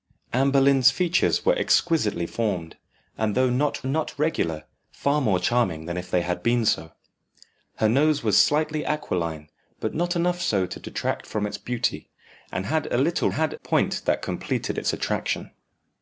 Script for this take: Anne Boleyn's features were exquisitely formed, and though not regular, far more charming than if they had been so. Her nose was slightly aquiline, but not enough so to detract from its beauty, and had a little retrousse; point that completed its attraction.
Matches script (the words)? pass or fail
fail